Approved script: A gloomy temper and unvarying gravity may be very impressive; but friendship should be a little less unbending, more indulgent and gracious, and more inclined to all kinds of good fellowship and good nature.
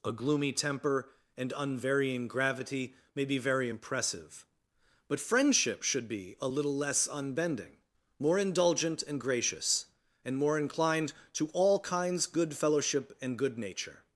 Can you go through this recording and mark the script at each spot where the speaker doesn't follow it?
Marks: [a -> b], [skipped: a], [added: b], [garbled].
A gloomy temper and unvarying gravity may be very impressive; but friendship should be a little less unbending, more indulgent and gracious, and more inclined to all kinds [skipped: of] good fellowship and good nature.